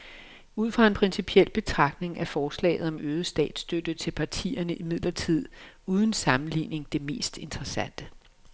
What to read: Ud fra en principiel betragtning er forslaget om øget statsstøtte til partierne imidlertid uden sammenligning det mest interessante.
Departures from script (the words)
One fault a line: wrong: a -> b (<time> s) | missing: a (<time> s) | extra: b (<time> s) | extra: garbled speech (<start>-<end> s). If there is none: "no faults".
no faults